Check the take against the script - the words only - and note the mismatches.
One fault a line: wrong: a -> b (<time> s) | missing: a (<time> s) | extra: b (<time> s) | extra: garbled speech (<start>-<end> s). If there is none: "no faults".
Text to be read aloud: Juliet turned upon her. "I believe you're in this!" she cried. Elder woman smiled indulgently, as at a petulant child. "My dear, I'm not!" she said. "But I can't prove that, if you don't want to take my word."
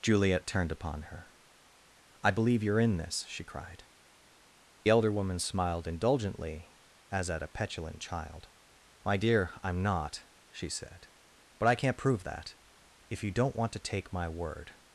no faults